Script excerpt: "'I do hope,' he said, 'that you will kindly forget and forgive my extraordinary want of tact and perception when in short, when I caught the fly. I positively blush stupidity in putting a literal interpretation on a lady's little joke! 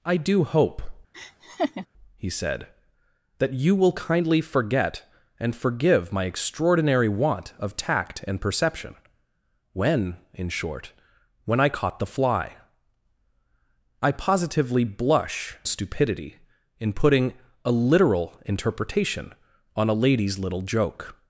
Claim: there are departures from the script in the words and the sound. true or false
true